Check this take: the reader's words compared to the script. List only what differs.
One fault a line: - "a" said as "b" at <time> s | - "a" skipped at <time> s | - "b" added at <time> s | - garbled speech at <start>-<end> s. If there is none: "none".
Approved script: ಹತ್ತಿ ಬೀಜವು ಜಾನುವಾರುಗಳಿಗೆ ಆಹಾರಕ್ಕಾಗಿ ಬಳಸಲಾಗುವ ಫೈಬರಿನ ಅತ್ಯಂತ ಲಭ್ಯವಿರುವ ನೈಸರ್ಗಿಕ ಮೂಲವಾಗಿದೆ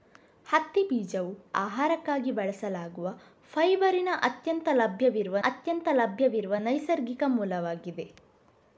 - "ಜಾನುವಾರುಗಳಿಗೆ" skipped at 1.3 s
- "ಅತ್ಯಂತ ಲಭ್ಯವಿರುವ" added at 5.4 s